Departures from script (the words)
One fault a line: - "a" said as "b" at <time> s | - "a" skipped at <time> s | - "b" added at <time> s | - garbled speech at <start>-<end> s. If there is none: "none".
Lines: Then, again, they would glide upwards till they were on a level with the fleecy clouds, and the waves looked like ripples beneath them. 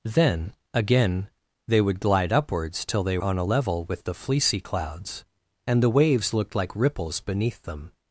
- "were" skipped at 3.2 s